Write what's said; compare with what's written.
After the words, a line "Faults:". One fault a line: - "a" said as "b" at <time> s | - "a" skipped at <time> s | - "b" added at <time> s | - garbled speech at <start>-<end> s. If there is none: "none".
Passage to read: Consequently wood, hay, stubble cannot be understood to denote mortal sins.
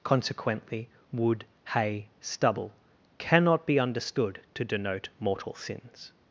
Consequently wood, hay, stubble cannot be understood to denote mortal sins.
Faults:
none